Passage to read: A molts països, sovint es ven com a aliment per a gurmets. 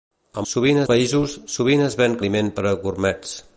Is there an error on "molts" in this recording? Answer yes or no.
yes